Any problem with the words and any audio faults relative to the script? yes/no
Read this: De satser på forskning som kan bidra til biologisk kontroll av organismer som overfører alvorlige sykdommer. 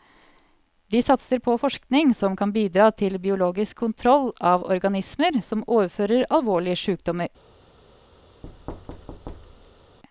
yes